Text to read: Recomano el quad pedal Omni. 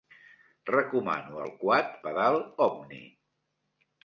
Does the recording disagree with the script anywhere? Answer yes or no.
no